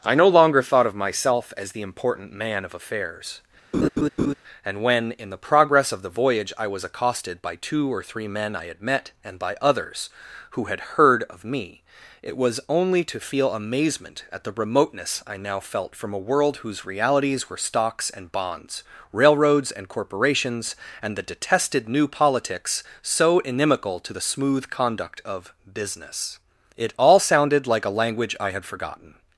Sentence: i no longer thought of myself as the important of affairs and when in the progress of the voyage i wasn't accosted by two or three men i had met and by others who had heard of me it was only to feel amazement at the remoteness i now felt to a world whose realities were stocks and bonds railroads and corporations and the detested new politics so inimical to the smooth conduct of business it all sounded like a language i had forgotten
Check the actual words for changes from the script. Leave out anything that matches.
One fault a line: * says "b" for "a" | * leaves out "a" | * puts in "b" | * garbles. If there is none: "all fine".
* puts in "man"
* says "was" for "wasn't"
* says "from" for "to"